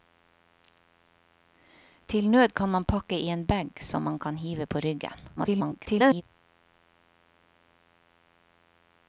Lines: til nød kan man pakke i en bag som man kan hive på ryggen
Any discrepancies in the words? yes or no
yes